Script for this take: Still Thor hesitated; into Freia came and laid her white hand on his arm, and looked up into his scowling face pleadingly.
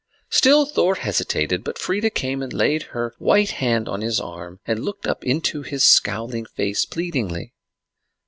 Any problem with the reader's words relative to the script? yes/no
yes